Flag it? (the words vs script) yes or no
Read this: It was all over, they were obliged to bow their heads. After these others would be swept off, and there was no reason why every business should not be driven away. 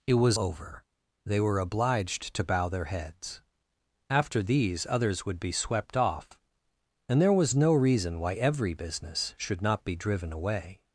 yes